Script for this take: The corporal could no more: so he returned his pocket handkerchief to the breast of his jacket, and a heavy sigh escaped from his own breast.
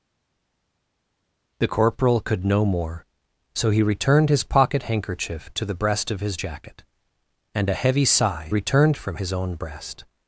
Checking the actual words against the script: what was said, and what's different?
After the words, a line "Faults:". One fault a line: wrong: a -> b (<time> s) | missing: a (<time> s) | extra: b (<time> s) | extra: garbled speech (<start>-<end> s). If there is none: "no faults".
The corporal could no more: so he returned his pocket handkerchief to the breast of his jacket, and a heavy sigh returned from his own breast.
Faults:
wrong: escaped -> returned (8.5 s)